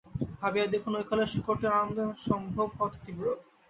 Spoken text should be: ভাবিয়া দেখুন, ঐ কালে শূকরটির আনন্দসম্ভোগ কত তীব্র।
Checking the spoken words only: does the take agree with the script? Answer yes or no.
yes